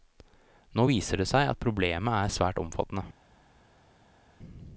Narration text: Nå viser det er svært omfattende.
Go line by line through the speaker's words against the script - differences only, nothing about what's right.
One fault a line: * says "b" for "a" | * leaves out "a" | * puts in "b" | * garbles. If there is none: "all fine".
* puts in "seg at problemet"